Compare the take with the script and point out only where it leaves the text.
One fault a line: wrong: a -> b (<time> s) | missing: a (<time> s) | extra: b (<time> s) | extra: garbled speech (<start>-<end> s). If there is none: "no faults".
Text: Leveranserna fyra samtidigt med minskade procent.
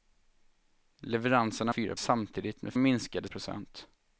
no faults